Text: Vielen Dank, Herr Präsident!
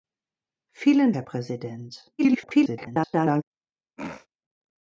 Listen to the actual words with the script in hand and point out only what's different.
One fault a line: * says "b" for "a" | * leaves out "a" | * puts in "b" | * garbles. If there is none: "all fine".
* leaves out "Dank"
* garbles